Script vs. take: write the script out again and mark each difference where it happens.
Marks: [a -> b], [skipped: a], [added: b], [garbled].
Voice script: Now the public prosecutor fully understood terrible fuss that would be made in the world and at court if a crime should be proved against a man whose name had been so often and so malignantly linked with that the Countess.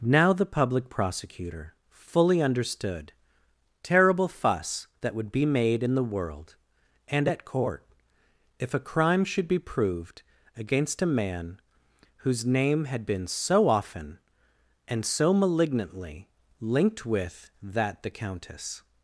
Now the public prosecutor fully understood terrible fuss that would be made in the world and at court if a crime should be proved against a man whose name had been so often and so malignantly linked with that the Countess.